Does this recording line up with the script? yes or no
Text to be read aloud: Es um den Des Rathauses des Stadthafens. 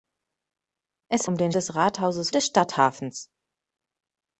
yes